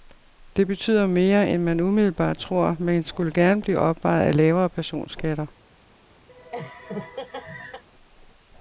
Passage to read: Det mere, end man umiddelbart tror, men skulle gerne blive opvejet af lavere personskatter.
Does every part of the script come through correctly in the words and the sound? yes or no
no